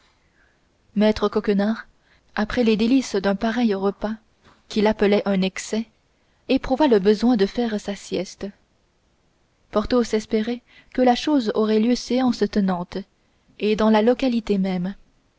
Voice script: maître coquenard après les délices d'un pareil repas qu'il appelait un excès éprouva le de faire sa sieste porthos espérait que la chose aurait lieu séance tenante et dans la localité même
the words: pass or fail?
fail